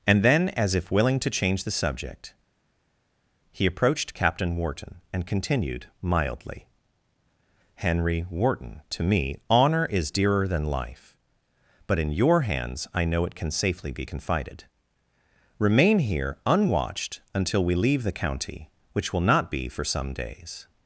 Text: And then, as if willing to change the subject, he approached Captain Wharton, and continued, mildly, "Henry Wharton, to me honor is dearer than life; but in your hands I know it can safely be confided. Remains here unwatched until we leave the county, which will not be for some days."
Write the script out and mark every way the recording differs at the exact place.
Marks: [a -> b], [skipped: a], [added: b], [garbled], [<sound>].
And then, as if willing to change the subject, he approached Captain Wharton, and continued, mildly, "Henry Wharton, to me honor is dearer than life; but in your hands I know it can safely be confided. [Remains -> Remain] here unwatched until we leave the county, which will not be for some days."